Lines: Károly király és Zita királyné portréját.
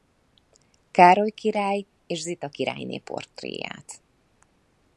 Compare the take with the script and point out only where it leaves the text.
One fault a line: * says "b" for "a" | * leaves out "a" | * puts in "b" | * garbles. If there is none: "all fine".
all fine